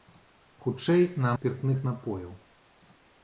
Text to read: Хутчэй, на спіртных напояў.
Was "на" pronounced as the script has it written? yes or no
yes